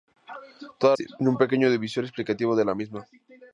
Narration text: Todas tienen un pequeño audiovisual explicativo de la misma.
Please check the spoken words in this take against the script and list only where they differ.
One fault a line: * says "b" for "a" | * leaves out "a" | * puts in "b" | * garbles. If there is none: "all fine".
all fine